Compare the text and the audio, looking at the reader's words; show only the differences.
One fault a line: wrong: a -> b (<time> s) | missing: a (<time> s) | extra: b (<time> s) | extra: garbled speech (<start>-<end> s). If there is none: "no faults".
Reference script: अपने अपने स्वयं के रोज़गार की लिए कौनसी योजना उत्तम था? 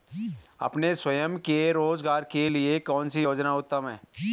missing: अपने (0.9 s)
wrong: की -> के (2.2 s)
wrong: था -> है (3.9 s)